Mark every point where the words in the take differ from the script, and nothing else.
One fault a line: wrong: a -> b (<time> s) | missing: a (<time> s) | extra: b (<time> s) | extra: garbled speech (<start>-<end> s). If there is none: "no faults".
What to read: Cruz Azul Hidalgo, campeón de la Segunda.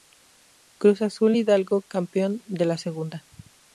no faults